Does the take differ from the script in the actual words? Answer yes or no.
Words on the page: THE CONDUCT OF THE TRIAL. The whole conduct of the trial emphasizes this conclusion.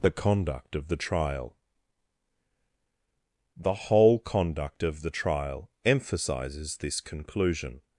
no